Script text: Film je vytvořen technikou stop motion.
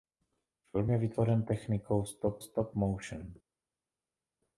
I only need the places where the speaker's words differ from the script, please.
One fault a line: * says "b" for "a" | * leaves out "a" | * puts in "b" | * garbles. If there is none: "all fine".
* puts in "stop"